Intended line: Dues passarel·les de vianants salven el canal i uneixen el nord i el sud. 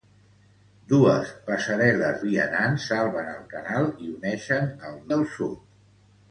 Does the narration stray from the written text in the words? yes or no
yes